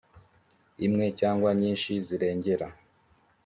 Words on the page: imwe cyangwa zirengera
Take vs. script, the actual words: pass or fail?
fail